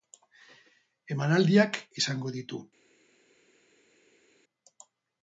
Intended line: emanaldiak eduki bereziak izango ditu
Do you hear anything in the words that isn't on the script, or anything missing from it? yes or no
yes